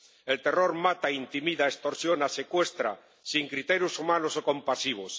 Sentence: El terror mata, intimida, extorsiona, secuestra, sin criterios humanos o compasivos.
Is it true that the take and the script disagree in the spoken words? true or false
false